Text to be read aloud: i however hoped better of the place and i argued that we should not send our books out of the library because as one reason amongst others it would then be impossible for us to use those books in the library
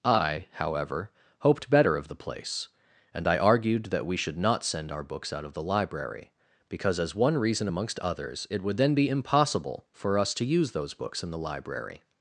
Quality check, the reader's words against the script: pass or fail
pass